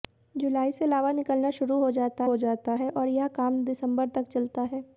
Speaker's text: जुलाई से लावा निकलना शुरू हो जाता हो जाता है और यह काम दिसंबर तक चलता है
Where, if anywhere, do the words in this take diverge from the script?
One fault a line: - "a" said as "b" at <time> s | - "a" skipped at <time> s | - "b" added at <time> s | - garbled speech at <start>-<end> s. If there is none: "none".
none